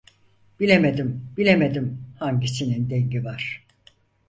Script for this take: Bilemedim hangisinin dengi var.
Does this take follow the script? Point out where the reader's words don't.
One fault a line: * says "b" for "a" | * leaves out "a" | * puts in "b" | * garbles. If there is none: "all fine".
* puts in "bilemedim"